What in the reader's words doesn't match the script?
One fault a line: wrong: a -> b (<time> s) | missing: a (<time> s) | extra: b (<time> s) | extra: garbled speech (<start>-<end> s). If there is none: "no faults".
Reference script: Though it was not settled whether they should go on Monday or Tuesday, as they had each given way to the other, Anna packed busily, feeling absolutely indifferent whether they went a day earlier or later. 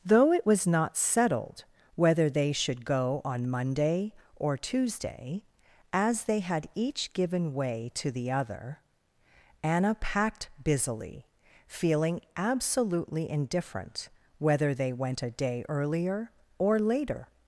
no faults